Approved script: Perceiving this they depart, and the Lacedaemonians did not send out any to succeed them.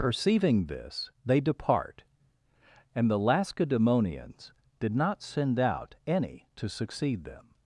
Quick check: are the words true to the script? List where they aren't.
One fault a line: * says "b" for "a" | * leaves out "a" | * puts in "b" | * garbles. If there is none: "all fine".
all fine